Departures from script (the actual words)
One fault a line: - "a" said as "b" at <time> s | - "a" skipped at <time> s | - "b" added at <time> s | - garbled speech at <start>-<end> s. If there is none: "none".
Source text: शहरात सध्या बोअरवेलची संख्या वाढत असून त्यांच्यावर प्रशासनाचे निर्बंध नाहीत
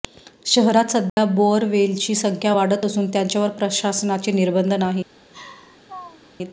none